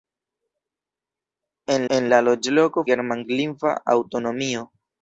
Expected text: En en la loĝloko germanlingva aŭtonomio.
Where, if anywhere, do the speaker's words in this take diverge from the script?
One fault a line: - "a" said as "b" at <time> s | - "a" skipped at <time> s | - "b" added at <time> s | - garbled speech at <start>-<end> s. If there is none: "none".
none